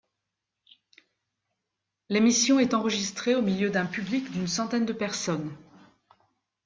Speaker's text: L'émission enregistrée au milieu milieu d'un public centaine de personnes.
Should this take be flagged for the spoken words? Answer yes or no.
yes